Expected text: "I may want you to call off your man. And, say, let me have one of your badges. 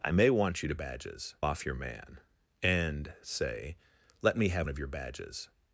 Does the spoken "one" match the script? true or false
false